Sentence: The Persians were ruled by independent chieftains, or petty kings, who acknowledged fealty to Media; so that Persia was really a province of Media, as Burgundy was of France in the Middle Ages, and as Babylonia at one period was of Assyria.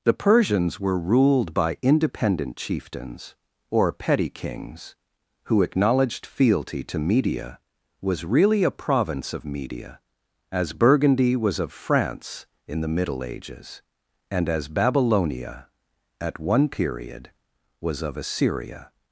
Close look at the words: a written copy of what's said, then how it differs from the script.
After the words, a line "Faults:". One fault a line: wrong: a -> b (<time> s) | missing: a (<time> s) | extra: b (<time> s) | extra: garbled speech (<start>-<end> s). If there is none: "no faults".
The Persians were ruled by independent chieftains, or petty kings, who acknowledged fealty to Media; was really a province of Media, as Burgundy was of France in the Middle Ages, and as Babylonia at one period was of Assyria.
Faults:
missing: so that Persia (7.6 s)